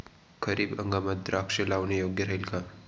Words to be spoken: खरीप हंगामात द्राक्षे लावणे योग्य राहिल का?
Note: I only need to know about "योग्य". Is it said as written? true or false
true